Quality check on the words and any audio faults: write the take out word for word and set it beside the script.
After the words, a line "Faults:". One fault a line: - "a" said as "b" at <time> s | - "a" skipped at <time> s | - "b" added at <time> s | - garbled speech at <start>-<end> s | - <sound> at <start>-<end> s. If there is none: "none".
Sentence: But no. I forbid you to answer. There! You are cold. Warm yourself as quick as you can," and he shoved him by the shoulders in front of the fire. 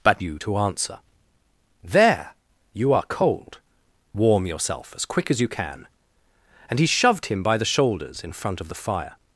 But you to answer. There! You are cold. Warm yourself as quick as you can," and he shoved him by the shoulders in front of the fire.
Faults:
- "no I forbid" skipped at 0.2 s